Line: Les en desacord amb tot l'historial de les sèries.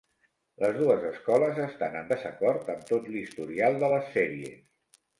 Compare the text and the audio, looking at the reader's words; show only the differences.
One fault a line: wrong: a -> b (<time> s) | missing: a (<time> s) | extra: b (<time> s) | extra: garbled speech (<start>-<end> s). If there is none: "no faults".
extra: dues escoles estan (0.8 s)